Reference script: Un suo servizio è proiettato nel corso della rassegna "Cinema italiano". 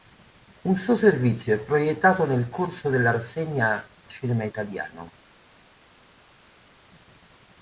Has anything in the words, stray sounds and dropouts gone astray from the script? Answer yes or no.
no